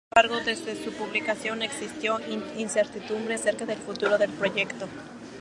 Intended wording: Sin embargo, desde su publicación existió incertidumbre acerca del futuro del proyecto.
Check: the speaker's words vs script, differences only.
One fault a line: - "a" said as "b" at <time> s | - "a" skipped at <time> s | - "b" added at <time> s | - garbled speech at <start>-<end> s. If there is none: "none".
none